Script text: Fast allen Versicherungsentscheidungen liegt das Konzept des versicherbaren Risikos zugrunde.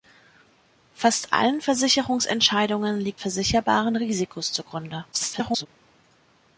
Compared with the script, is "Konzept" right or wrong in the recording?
wrong